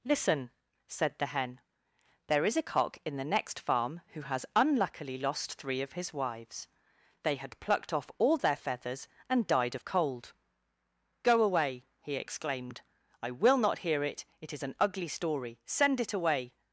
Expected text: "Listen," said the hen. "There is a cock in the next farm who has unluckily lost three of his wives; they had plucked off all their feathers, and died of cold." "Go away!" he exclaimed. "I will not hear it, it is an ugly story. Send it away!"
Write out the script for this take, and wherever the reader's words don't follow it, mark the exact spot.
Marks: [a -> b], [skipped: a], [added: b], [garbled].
"Listen," said the hen. "There is a cock in the next farm who has unluckily lost three of his wives; they had plucked off all their feathers, and died of cold." "Go away!" he exclaimed. "I will not hear it, it is an ugly story. Send it away!"